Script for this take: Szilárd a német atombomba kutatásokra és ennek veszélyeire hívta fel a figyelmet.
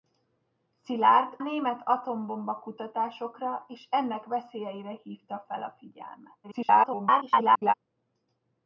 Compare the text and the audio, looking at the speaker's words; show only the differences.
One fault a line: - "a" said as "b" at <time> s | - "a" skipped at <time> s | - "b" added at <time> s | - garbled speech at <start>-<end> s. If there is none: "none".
- "a" skipped at 1.4 s
- garbled speech at 6.4-7.7 s